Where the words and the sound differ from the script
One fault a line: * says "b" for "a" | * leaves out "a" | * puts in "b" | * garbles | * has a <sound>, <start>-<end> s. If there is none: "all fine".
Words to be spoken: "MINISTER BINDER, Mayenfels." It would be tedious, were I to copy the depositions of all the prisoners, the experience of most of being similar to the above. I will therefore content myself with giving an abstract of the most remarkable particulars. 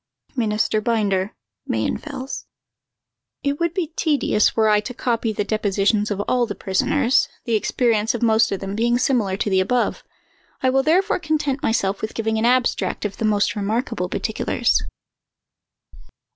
* puts in "them"